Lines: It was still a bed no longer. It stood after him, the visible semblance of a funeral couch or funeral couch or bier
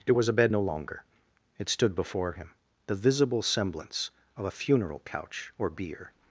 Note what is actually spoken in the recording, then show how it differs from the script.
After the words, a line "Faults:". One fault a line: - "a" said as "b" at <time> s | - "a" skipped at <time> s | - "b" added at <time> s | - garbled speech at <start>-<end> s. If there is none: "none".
It was a bed no longer. It stood before him, the visible semblance of a funeral couch or bier
Faults:
- "still" skipped at 0.3 s
- "after" said as "before" at 1.9 s
- "funeral couch or" skipped at 5.7 s